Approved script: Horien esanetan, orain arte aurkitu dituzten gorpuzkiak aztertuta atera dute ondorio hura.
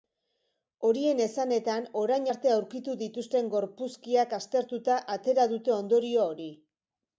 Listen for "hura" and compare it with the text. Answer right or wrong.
wrong